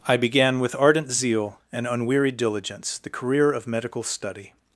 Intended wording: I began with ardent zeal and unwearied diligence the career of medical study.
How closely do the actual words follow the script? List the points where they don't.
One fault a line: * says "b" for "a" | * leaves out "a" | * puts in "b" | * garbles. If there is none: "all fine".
all fine